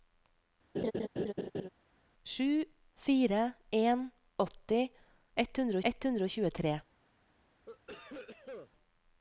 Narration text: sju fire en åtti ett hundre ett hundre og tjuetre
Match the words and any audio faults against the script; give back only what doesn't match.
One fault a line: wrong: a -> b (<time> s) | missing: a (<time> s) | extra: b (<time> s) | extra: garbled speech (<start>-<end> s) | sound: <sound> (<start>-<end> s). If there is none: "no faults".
sound: laugh (0.7-1.7 s)
sound: cough (7.7-8.7 s)